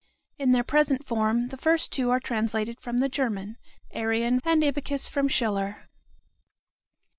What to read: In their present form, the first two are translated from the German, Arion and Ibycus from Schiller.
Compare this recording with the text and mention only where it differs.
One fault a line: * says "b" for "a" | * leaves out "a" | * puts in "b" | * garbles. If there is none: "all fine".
all fine